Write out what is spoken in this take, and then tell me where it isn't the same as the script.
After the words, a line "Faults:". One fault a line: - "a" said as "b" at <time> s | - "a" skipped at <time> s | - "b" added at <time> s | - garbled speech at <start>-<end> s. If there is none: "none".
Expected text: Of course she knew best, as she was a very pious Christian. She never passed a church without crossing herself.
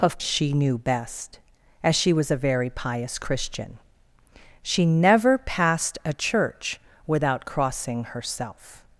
Of she knew best, as she was a very pious Christian. She never passed a church without crossing herself.
Faults:
- "course" skipped at 0.2 s